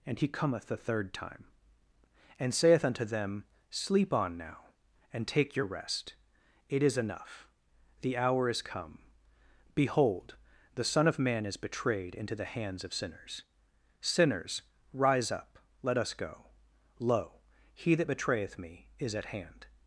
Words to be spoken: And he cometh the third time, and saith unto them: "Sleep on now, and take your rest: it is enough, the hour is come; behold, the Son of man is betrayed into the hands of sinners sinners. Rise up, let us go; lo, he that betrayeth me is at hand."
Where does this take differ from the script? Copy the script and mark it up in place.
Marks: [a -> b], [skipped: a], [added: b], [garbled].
And he cometh the third time, and saith unto them: "Sleep on now, and take your rest: it is enough, the hour is come; behold, the Son of man is betrayed into the hands of sinners sinners. Rise up, let us go; lo, he that betrayeth me is at hand."